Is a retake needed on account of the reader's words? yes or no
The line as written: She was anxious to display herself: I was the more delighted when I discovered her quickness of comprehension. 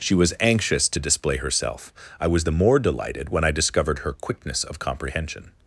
no